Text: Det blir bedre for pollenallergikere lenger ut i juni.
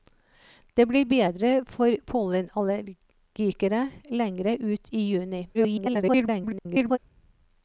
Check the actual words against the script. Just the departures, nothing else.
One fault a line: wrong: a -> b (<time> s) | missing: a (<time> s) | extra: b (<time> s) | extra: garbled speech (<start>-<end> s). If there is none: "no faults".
extra: garbled speech (5.5-7.0 s)